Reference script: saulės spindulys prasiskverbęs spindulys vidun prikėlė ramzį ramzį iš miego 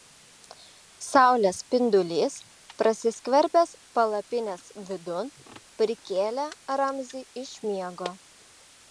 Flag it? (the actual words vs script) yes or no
yes